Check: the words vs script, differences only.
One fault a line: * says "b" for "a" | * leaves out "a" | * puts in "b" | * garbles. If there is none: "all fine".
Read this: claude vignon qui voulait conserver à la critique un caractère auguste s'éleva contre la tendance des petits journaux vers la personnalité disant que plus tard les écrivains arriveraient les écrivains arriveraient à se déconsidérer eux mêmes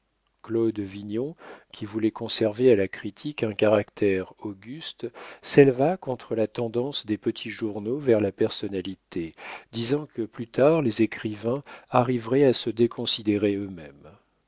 * leaves out "les écrivains arriveraient"